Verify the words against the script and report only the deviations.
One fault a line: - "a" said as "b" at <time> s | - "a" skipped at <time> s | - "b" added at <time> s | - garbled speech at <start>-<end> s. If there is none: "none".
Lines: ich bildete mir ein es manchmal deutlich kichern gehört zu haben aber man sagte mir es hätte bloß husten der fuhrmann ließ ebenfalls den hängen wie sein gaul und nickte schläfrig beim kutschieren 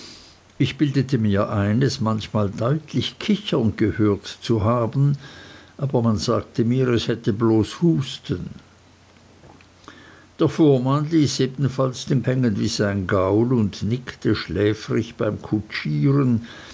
none